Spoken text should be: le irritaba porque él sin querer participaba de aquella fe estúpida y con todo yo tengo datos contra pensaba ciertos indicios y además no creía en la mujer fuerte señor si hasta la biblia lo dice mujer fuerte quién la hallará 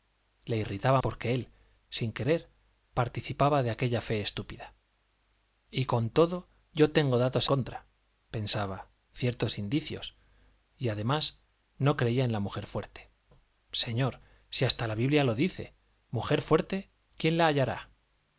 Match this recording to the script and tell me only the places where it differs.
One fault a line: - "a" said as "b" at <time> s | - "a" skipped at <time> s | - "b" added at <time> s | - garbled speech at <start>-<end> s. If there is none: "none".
none